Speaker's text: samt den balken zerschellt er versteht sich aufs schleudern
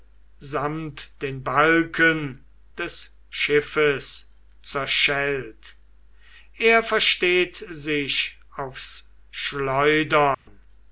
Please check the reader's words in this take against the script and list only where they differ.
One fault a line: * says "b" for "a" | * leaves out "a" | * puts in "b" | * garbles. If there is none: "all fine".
* puts in "des schiffes"